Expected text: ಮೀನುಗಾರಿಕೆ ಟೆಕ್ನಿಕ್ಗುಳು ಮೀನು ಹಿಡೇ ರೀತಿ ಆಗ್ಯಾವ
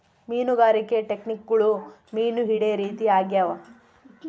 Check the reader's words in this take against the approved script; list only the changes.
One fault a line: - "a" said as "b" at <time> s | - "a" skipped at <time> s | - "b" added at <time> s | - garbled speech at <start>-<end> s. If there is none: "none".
none